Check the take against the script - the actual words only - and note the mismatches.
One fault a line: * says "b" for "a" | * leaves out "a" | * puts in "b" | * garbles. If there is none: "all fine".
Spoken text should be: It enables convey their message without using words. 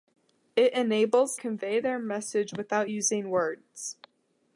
all fine